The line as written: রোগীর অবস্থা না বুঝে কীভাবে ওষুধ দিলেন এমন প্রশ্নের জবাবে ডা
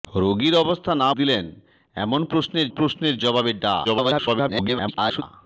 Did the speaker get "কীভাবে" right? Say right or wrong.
wrong